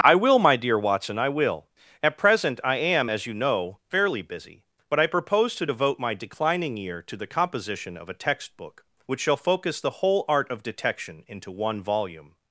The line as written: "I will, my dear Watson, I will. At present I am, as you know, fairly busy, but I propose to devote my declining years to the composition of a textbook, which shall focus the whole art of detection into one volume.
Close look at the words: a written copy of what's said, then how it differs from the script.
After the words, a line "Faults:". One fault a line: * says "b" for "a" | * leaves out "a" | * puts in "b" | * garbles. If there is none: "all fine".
"I will, my dear Watson, I will. At present I am, as you know, fairly busy, but I propose to devote my declining year to the composition of a textbook, which shall focus the whole art of detection into one volume.
Faults:
* says "year" for "years"